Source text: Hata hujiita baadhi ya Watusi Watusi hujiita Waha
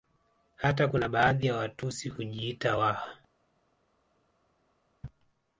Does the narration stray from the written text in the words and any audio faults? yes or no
yes